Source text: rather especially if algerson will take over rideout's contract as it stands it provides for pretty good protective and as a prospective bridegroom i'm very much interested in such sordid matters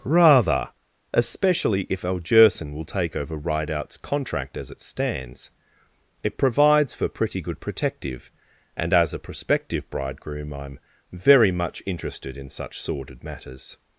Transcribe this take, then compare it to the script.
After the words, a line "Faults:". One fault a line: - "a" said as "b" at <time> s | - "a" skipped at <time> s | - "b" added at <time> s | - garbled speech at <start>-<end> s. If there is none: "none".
rather especially if algerson will take over rideout's contract as it stands it provides for pretty good protective and as a prospective bridegroom i'm very much interested in such sordid matters
Faults:
none